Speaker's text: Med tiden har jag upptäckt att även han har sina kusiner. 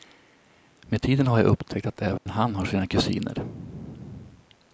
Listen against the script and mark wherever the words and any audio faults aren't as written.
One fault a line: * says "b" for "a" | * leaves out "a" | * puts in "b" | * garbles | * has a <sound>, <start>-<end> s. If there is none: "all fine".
* has a dropout, 2.2-2.3 s